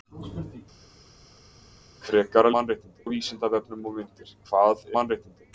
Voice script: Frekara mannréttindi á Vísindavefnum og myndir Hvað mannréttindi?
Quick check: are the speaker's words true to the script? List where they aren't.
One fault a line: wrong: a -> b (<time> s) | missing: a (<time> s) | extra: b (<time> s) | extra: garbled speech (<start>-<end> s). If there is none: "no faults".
no faults